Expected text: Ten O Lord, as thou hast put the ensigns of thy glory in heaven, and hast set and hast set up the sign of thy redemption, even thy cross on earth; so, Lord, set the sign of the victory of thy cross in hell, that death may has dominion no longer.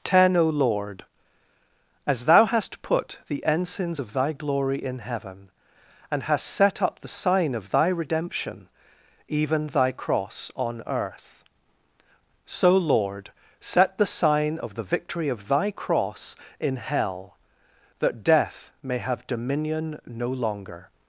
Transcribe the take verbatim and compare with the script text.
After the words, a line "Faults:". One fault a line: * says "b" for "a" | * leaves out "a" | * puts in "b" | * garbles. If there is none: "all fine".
Ten O Lord, as thou hast put the ensigns of thy glory in heaven, and hast set up the sign of thy redemption, even thy cross on earth; so, Lord, set the sign of the victory of thy cross in hell, that death may have dominion no longer.
Faults:
* leaves out "and hast set"
* says "have" for "has"